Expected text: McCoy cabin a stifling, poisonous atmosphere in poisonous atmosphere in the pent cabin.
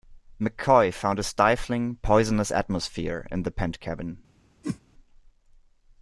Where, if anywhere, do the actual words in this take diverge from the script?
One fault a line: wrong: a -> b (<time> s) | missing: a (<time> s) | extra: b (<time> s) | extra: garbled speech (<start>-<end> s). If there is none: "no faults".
wrong: cabin -> found (0.9 s)
missing: poisonous atmosphere in (3.4 s)